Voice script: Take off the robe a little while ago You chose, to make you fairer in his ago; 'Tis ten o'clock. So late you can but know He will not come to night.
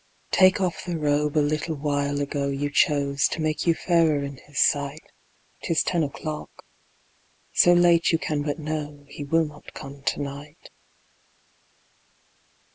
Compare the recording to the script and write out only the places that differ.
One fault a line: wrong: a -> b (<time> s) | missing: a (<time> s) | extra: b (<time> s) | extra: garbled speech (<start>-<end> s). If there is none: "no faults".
wrong: ago -> sight (4.6 s)